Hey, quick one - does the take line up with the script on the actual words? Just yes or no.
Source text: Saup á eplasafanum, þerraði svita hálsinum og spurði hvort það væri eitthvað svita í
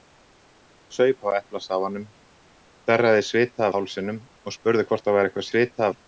yes